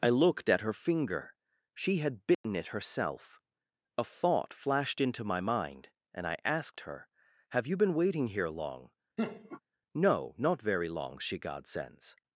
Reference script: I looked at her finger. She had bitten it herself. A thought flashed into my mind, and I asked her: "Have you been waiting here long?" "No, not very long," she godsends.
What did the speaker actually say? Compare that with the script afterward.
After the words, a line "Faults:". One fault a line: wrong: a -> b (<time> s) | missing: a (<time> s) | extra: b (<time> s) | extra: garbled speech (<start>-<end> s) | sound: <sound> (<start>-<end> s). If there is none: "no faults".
I looked at her finger. She had bitten it herself. A thought flashed into my mind, and I asked her: "Have you been waiting here long?" "No, not very long," she godsends.
Faults:
sound: dropout (2.3-2.4 s)
sound: laugh (9.2-9.6 s)